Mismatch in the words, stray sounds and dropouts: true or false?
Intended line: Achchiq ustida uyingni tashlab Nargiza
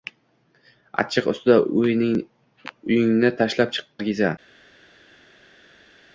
false